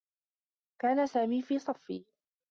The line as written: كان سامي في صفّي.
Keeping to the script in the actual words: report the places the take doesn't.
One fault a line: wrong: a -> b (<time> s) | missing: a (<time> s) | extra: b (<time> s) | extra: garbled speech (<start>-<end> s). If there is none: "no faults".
no faults